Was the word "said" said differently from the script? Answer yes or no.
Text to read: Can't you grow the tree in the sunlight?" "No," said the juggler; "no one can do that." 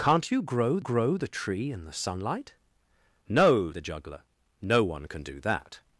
yes